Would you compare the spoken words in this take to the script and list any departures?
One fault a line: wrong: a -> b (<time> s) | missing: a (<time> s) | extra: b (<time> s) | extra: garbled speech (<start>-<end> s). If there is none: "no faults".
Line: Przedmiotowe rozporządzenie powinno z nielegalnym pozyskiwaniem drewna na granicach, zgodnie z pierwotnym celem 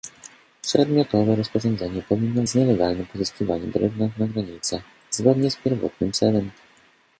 no faults